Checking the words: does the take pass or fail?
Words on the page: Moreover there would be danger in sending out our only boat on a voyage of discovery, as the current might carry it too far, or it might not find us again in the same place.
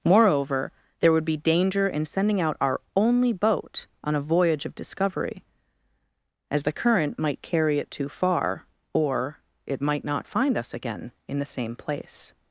pass